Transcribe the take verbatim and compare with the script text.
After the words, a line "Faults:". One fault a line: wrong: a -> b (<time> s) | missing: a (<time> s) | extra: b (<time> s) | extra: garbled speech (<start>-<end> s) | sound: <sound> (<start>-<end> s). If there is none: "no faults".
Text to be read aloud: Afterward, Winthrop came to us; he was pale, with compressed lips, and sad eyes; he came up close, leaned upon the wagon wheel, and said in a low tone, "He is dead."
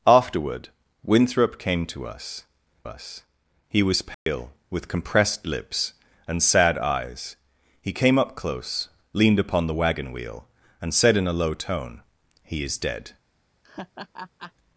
Afterward, Winthrop came to us us; he was pale, with compressed lips, and sad eyes; he came up close, leaned upon the wagon wheel, and said in a low tone, "He is dead."
Faults:
extra: us (2.9 s)
sound: dropout (4.1-4.3 s)
sound: laugh (13.6-14.5 s)